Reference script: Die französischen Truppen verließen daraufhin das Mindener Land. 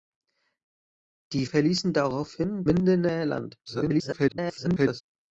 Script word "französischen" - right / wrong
wrong